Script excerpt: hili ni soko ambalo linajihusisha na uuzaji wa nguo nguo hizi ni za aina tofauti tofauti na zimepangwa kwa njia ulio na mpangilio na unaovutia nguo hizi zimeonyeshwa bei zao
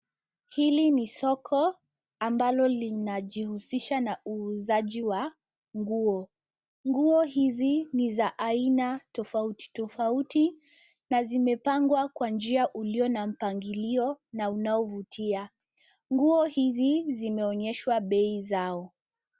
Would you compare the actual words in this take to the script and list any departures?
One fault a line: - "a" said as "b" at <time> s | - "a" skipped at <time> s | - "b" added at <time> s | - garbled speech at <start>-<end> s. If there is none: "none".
none